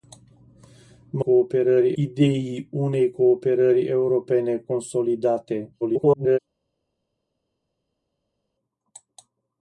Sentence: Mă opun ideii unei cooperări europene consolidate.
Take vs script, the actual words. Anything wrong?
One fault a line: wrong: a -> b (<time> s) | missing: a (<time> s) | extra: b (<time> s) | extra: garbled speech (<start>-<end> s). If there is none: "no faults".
wrong: opun -> cooperări (1.2 s)
extra: garbled speech (5.8-6.4 s)